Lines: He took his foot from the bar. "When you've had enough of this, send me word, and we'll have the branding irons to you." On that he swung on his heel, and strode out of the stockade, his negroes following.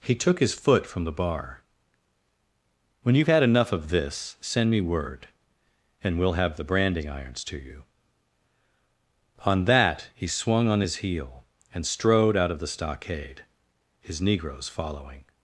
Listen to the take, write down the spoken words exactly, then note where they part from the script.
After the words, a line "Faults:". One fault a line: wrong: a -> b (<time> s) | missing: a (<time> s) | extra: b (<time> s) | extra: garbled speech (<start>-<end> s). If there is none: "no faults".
He took his foot from the bar. "When you've had enough of this, send me word, and we'll have the branding irons to you." On that he swung on his heel, and strode out of the stockade, his negroes following.
Faults:
no faults